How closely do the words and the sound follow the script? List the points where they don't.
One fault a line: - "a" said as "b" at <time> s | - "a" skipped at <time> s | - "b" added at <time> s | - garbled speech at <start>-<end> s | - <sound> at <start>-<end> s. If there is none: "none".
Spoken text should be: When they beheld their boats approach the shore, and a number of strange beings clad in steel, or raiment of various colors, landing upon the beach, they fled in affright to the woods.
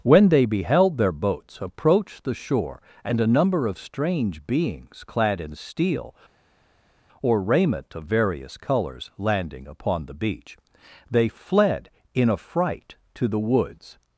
none